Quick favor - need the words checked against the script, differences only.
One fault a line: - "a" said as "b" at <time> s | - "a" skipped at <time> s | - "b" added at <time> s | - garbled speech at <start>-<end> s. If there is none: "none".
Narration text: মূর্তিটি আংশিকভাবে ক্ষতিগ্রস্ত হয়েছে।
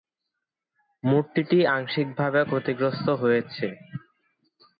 none